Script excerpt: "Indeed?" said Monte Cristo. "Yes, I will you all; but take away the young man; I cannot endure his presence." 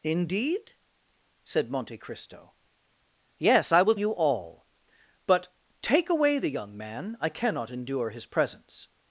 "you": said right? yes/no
yes